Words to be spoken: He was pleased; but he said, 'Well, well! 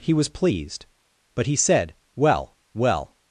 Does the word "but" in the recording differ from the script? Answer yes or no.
no